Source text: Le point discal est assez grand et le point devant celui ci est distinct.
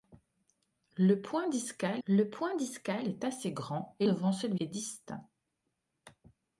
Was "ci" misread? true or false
true